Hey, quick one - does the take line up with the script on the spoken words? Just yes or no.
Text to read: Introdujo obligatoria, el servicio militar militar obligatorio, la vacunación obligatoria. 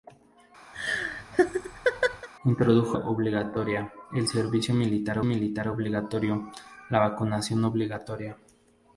yes